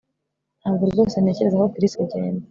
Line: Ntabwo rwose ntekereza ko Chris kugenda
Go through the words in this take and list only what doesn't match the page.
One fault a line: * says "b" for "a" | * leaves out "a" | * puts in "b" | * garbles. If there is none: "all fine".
all fine